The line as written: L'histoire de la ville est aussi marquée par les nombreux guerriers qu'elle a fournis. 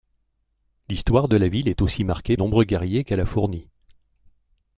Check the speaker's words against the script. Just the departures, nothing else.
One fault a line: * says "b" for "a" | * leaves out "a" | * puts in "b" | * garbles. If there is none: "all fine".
* leaves out "par les"